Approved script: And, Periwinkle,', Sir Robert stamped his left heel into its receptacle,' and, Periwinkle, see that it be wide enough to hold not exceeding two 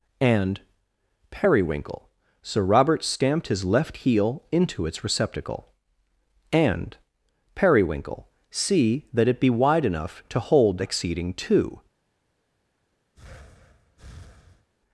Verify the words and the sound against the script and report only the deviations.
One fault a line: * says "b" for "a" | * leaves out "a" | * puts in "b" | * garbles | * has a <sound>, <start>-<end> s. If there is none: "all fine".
* leaves out "not"
* has a breath, 13.1-14.7 s